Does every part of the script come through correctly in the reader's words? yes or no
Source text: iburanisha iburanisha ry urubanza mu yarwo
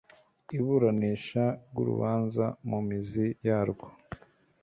no